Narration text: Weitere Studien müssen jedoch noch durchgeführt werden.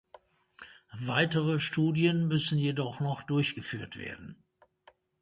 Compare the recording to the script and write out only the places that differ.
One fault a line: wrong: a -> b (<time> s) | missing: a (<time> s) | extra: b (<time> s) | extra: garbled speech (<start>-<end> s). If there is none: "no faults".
no faults